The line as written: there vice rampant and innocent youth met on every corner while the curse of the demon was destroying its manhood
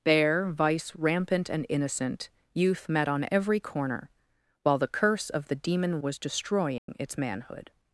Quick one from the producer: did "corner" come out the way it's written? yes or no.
yes